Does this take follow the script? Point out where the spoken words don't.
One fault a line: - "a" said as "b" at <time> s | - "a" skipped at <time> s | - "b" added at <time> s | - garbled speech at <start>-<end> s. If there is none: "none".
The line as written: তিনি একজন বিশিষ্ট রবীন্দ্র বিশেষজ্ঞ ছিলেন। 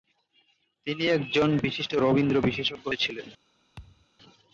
none